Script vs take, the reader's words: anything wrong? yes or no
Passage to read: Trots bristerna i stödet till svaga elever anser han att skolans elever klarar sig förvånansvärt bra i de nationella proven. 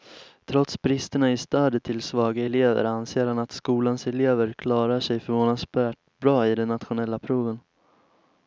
no